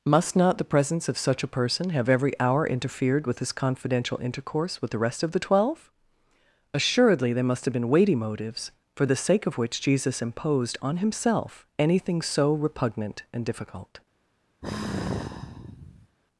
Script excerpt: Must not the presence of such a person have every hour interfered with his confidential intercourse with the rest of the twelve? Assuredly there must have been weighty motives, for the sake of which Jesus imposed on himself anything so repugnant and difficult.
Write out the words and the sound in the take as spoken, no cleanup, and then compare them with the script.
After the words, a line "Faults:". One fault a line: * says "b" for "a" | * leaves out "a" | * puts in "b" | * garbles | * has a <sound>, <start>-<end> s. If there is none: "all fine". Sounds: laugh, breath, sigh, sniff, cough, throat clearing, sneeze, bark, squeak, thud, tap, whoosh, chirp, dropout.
Must not the presence of such a person have every hour interfered with his confidential intercourse with the rest of the twelve? Assuredly there must have been weighty motives, for the sake of which Jesus imposed on himself anything so repugnant and difficult.
Faults:
* has a sigh, 14.6-16.2 s